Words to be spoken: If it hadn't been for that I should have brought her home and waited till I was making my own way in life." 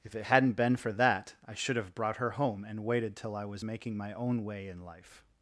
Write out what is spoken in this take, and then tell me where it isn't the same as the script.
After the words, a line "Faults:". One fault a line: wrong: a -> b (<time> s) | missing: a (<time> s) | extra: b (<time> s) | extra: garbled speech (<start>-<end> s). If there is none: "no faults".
If it hadn't been for that I should have brought her home and waited till I was making my own way in life."
Faults:
no faults